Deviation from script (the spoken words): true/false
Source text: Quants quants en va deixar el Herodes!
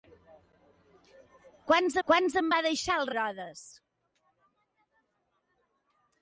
false